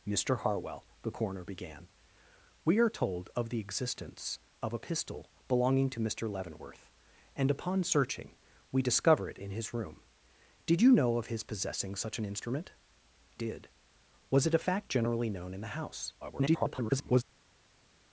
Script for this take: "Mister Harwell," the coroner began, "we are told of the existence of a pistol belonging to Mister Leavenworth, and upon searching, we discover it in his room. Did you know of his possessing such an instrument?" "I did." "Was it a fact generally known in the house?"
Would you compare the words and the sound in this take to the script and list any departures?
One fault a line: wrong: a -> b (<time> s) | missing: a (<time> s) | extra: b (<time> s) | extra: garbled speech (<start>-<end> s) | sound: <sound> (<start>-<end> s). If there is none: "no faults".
missing: I (12.7 s)
extra: garbled speech (16.2-17.2 s)